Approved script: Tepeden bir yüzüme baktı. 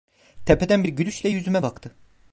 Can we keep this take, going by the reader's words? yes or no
no